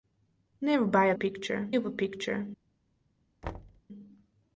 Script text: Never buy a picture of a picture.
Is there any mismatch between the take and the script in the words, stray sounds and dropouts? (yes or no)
yes